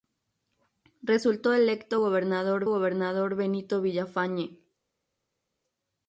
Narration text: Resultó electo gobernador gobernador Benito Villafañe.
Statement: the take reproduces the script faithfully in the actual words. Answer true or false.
true